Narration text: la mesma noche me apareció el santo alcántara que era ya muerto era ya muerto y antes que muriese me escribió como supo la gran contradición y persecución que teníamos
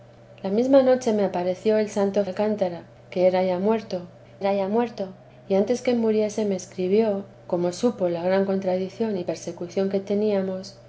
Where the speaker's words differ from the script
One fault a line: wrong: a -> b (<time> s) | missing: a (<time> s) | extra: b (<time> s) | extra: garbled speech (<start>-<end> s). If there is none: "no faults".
no faults